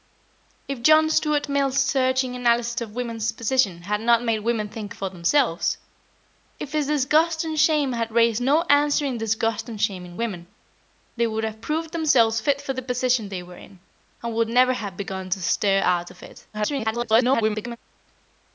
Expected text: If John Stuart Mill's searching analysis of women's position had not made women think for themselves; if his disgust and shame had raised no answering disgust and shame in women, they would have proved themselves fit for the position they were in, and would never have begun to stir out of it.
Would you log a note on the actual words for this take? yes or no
yes